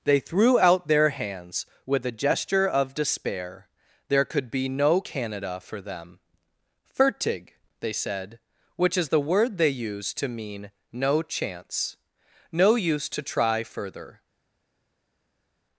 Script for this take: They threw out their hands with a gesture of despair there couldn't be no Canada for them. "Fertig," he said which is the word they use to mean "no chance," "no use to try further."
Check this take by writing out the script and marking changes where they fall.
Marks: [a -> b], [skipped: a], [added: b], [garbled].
They threw out their hands with a gesture of despair there [couldn't -> could] be no Canada for them. "Fertig," [he -> they] said which is the word they use to mean "no chance," "no use to try further."